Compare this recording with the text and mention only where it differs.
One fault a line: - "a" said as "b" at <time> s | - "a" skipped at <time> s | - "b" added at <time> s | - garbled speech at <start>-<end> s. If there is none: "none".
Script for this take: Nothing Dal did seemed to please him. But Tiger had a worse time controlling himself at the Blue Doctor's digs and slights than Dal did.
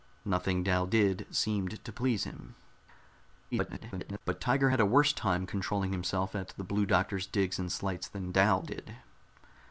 - garbled speech at 3.5-4.2 s